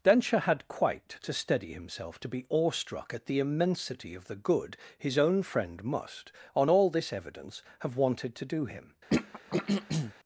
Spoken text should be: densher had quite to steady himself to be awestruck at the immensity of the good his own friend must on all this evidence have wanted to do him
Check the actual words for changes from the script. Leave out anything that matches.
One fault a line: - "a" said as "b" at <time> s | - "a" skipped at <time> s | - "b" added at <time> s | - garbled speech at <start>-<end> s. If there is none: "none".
none